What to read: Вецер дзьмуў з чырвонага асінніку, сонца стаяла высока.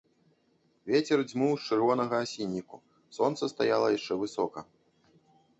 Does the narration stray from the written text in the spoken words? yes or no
yes